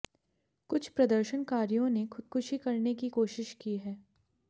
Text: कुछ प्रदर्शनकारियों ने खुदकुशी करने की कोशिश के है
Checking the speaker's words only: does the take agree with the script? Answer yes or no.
no